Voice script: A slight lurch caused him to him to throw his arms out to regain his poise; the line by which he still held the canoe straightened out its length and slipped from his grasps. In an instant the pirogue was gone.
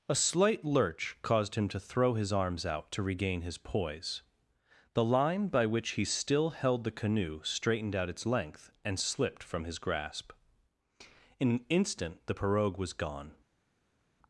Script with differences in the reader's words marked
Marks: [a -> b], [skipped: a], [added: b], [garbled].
A slight lurch caused him to [skipped: him to] throw his arms out to regain his poise; the line by which he still held the canoe straightened out its length and slipped from his [grasps. -> grasp] In an instant the pirogue was gone.